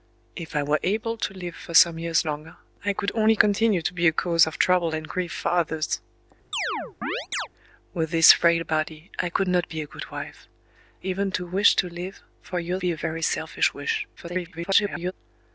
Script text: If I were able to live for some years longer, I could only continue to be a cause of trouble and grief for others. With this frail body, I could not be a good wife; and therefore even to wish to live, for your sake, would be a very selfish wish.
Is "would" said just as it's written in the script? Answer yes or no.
no